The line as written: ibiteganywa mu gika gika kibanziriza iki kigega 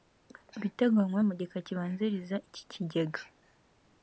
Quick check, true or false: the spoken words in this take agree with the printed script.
false